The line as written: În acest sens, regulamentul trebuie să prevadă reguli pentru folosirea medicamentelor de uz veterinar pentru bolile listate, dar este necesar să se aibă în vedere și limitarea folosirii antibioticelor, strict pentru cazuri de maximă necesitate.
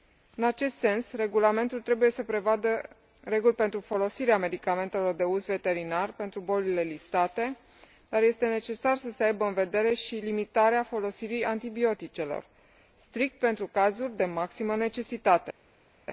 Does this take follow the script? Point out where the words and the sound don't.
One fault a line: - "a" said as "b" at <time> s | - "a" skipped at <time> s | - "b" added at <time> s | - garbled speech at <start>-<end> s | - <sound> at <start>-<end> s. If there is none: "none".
none